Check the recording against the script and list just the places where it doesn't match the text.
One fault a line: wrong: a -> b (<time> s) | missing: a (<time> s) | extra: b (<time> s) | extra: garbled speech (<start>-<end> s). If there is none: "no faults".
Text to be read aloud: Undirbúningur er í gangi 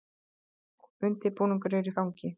no faults